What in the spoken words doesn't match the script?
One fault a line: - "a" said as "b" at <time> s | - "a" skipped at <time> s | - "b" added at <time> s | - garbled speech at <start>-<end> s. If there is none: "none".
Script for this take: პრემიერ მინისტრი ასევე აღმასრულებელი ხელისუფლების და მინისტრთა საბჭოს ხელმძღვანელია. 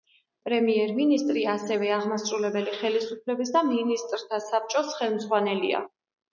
none